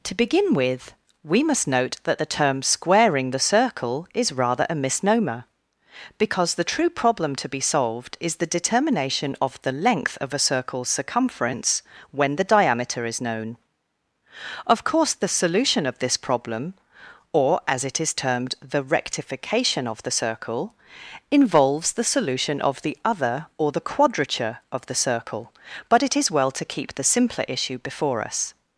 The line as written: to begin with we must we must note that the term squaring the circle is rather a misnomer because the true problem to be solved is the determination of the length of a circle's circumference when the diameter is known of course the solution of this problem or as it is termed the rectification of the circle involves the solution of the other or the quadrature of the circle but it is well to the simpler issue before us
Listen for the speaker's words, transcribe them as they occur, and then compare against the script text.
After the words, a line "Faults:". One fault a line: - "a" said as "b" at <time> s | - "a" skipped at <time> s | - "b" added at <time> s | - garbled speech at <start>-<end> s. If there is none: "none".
to begin with we must note that the term squaring the circle is rather a misnomer because the true problem to be solved is the determination of the length of a circle's circumference when the diameter is known of course the solution of this problem or as it is termed the rectification of the circle involves the solution of the other or the quadrature of the circle but it is well to keep the simpler issue before us
Faults:
- "we must" skipped at 1.7 s
- "keep" added at 26.6 s